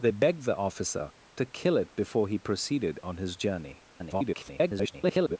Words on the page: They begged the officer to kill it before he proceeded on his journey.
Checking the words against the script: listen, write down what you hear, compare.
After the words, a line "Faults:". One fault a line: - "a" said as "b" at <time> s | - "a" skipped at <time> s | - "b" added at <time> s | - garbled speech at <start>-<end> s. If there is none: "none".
They begged the officer to kill it before he proceeded on his journey. [garbled]
Faults:
- garbled speech at 3.9-5.4 s